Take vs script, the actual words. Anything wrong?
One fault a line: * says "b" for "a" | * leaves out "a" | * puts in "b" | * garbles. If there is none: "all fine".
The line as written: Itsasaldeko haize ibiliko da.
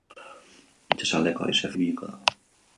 all fine